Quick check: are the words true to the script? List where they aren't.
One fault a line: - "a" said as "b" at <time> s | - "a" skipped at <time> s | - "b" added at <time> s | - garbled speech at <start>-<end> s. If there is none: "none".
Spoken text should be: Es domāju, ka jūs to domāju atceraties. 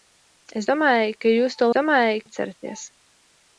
none